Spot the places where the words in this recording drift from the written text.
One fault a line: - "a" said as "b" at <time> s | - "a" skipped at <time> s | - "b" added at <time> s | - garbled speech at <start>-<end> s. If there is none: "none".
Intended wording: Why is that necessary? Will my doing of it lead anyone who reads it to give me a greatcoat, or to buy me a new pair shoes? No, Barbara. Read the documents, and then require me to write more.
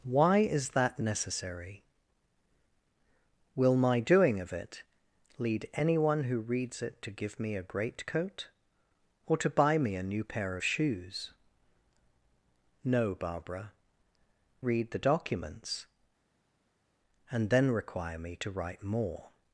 none